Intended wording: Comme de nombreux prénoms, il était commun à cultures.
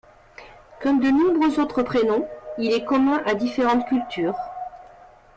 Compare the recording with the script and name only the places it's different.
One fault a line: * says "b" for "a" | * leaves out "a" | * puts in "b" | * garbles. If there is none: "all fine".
* puts in "autres"
* says "est" for "était"
* puts in "différentes"